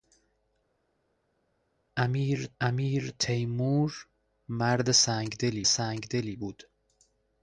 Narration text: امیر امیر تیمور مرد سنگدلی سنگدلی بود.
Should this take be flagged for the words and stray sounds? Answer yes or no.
no